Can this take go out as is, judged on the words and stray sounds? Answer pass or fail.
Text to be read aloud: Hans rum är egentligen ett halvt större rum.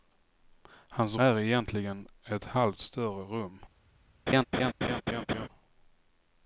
fail